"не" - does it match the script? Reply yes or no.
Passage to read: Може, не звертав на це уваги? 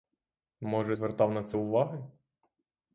no